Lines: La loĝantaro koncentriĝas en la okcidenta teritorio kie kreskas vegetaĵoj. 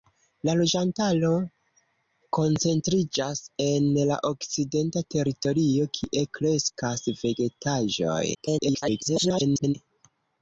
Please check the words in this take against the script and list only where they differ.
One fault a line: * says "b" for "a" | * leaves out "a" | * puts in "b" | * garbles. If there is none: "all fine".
* garbles